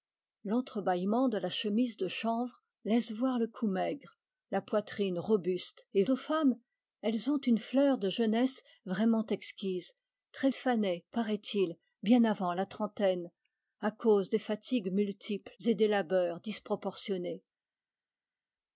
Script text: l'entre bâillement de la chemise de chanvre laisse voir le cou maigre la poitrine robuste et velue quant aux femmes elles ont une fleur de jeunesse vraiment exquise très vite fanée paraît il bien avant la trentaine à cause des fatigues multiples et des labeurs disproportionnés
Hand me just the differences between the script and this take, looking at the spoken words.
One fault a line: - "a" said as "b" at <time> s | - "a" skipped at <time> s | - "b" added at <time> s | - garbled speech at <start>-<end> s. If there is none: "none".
- "velue quant" skipped at 6.0 s
- "vite" skipped at 10.5 s